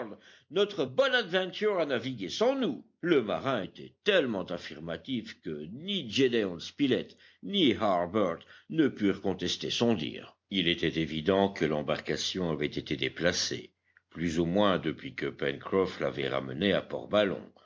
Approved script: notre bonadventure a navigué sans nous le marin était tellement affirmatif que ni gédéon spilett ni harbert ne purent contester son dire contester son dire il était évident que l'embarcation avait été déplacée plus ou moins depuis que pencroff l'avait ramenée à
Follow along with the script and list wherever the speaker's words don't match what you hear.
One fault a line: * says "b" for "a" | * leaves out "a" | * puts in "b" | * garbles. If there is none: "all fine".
* leaves out "contester son dire"